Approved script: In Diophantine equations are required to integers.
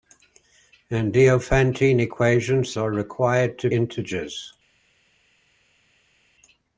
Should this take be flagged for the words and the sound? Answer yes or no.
no